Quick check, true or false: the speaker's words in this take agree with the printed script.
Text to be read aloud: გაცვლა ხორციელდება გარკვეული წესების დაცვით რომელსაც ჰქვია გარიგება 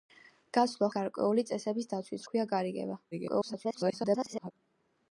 false